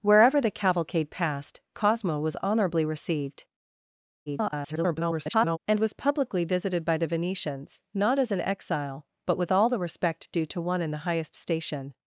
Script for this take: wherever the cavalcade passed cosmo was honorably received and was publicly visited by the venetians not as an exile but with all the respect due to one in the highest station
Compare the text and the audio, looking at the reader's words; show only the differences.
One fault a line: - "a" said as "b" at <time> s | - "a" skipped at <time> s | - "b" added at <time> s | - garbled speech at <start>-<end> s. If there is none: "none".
- garbled speech at 4.3-5.6 s